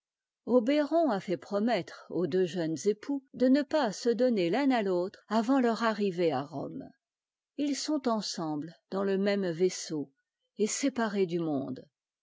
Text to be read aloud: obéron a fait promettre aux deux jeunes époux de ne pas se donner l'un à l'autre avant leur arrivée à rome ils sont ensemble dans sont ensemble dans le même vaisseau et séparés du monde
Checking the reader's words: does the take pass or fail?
fail